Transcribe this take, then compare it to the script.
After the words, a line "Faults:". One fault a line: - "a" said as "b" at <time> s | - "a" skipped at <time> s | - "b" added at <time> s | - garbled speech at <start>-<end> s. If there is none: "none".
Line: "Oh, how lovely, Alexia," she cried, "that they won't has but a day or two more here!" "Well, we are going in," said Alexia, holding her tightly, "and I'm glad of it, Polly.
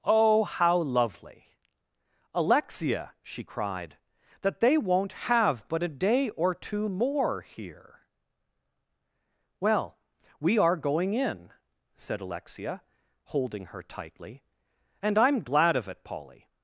"Oh, how lovely, Alexia," she cried, "that they won't have but a day or two more here!" "Well, we are going in," said Alexia, holding her tightly, "and I'm glad of it, Polly.
Faults:
- "has" said as "have" at 5.1 s